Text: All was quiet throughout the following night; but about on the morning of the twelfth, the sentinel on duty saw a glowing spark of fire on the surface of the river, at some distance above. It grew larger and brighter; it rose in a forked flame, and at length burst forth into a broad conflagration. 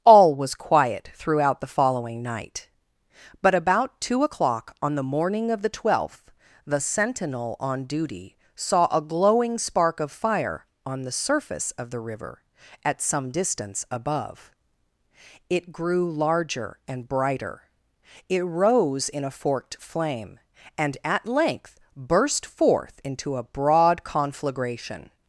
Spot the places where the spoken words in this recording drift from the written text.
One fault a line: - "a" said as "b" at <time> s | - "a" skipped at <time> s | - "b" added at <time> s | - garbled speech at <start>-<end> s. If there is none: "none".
- "two o'clock" added at 4.0 s